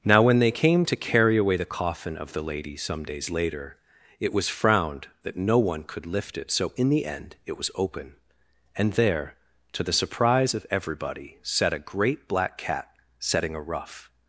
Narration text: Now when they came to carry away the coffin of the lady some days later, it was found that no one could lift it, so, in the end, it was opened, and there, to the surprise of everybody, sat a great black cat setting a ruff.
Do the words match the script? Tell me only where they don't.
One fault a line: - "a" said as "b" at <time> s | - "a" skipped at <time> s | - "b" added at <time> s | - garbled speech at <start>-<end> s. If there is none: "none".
- "found" said as "frowned" at 4.5 s
- "opened" said as "open" at 7.8 s